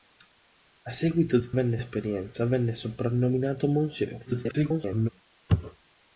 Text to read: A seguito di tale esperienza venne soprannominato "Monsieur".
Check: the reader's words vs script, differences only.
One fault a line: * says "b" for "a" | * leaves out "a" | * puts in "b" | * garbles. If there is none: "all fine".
* says "venne" for "tale"
* garbles